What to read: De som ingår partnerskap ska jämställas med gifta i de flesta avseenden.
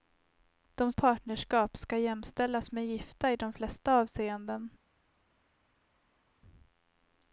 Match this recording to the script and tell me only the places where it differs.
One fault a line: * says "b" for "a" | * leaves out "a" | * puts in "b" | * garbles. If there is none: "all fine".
* leaves out "som ingår"